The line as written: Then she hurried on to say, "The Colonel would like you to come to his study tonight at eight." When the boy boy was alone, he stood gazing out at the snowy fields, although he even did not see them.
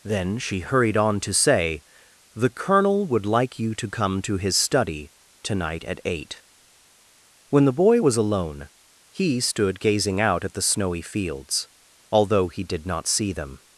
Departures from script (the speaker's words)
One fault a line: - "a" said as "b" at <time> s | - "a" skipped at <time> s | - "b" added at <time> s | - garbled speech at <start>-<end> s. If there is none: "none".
- "boy" skipped at 8.0 s
- "even" skipped at 12.6 s